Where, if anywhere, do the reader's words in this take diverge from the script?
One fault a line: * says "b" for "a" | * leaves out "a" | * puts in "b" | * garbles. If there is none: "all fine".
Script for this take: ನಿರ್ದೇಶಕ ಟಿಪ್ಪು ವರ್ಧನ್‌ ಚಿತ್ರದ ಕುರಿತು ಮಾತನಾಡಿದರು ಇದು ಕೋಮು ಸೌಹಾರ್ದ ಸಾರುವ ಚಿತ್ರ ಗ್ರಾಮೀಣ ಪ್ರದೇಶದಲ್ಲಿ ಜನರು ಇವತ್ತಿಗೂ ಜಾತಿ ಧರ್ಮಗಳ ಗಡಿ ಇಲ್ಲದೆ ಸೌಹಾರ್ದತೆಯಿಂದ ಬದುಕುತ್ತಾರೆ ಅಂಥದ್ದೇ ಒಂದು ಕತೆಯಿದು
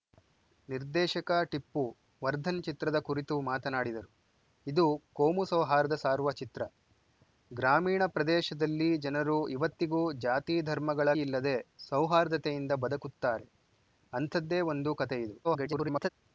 * leaves out "ಗಡಿ"
* garbles